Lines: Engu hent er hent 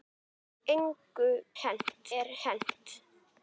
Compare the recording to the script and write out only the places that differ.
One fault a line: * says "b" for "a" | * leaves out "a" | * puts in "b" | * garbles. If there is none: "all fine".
all fine